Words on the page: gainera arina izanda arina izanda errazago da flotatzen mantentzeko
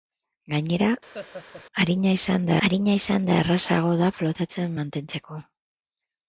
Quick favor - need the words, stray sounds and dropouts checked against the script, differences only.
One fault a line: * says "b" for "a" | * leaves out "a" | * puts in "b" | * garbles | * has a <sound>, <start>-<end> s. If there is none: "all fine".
* has a laugh, 1.1-1.6 s